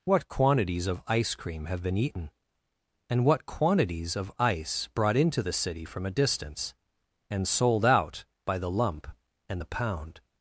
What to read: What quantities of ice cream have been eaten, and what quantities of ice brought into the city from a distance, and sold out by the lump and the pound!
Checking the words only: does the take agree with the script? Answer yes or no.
yes